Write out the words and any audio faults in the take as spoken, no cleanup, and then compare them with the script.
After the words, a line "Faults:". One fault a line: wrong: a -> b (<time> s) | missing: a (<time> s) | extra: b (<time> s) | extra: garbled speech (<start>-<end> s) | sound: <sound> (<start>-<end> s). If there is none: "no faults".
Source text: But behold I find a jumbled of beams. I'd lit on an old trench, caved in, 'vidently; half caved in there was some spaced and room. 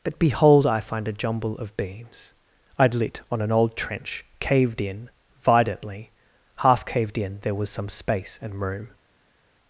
But behold I find a jumble of beams. I'd lit on an old trench, caved in, 'vidently; half caved in there was some space and room.
Faults:
wrong: jumbled -> jumble (1.1 s)
wrong: spaced -> space (7.9 s)